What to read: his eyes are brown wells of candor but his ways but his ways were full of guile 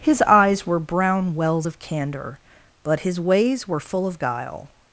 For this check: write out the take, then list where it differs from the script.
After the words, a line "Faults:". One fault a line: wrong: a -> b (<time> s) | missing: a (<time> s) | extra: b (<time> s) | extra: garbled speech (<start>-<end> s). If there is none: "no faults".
his eyes were brown wells of candor but his ways were full of guile
Faults:
wrong: are -> were (0.7 s)
missing: but his ways (3.7 s)